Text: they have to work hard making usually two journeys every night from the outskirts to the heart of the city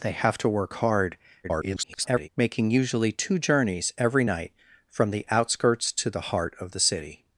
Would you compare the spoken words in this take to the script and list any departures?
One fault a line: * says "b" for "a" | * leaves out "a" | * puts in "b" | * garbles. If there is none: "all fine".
* garbles